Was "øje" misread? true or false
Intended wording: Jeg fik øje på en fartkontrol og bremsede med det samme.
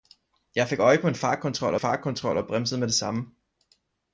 false